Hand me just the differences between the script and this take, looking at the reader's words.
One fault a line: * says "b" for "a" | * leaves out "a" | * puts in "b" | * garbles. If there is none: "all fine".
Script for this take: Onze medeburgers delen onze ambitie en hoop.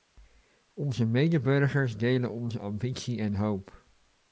all fine